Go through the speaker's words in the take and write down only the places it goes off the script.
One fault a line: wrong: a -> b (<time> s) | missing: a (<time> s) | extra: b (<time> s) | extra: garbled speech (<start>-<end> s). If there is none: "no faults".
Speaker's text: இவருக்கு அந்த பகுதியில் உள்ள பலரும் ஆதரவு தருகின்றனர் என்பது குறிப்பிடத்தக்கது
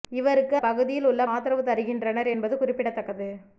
missing: அந்த (0.6 s)
missing: பலரும் (1.2 s)